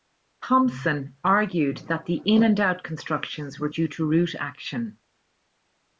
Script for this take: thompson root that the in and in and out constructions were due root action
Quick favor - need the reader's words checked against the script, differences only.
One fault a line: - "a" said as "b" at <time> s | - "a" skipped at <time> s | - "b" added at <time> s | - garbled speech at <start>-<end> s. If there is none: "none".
- "root" said as "argued" at 1.2 s
- "in and" skipped at 2.6 s
- "to" added at 3.9 s